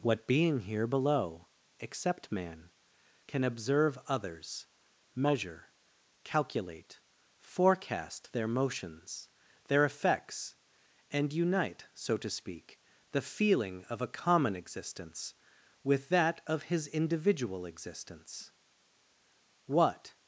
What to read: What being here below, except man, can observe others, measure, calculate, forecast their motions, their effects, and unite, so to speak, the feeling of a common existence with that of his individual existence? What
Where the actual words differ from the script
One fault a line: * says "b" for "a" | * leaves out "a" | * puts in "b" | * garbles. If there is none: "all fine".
all fine